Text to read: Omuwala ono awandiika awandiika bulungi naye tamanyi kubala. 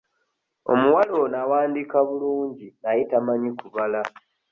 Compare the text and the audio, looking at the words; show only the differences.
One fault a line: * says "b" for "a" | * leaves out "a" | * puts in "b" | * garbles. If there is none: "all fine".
* leaves out "awandiika"